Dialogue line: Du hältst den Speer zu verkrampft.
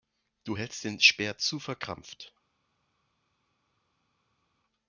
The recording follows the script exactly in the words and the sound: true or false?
true